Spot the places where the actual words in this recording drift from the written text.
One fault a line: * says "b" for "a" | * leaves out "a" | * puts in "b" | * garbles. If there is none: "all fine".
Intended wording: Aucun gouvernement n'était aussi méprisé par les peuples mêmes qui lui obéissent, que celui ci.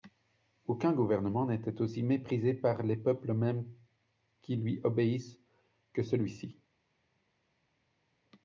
all fine